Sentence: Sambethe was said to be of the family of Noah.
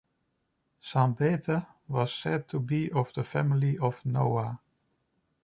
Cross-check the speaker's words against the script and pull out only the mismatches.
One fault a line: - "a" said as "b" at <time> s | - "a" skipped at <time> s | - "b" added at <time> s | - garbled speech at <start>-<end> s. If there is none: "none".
none